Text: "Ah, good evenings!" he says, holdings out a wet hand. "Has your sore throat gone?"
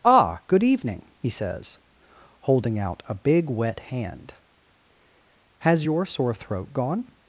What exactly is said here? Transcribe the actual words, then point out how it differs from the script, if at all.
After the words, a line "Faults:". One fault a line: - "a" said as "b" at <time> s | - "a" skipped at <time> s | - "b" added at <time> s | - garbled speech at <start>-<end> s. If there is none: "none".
"Ah, good evening!" he says, holding out a big wet hand. "Has your sore throat gone?"
Faults:
- "evenings" said as "evening" at 0.6 s
- "holdings" said as "holding" at 2.4 s
- "big" added at 3.1 s